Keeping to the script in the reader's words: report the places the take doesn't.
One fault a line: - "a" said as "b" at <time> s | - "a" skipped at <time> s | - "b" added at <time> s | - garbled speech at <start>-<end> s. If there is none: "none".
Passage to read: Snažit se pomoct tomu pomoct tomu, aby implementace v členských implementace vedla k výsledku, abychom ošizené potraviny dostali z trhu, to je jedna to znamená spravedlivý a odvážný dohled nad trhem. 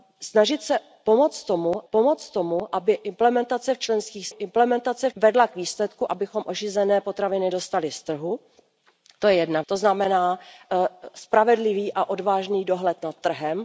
none